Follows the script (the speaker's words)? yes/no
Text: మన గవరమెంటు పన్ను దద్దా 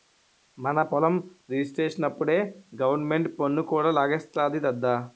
no